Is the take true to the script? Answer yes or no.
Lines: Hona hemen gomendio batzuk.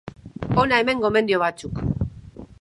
yes